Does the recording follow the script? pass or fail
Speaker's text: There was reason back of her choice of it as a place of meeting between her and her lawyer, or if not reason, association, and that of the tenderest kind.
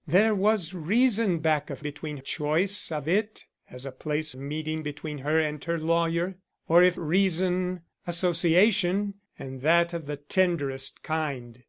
fail